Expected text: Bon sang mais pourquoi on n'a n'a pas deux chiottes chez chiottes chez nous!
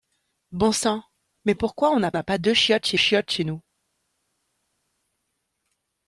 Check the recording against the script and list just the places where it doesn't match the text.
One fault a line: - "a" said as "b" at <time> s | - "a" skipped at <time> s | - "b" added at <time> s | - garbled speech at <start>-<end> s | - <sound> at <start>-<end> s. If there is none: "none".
none